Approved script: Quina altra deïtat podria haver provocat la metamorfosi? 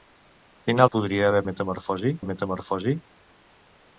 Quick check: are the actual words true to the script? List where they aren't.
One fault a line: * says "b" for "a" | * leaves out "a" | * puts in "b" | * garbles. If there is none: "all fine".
* leaves out "altra deïtat"
* says "metamorfosi" for "provocat"